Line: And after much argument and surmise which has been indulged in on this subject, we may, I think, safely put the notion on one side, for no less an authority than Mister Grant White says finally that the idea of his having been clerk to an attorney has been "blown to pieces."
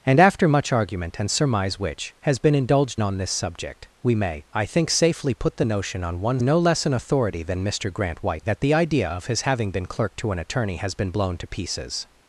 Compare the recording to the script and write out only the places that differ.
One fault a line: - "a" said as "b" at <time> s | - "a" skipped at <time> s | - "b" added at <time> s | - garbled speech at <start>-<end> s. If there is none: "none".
- "in" skipped at 3.0 s
- "side for" skipped at 6.4 s
- "says finally" skipped at 8.5 s